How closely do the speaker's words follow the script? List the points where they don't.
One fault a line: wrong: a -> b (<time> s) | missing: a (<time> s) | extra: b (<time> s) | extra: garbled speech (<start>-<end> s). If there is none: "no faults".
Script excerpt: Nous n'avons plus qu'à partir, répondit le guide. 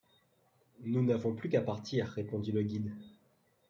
no faults